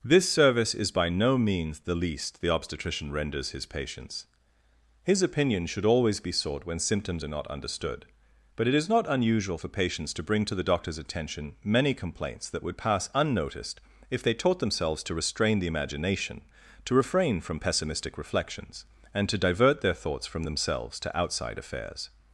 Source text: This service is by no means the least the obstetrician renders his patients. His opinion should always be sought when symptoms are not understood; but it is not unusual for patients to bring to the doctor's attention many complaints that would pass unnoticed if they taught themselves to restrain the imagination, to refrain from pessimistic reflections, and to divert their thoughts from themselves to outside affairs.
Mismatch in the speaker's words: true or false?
false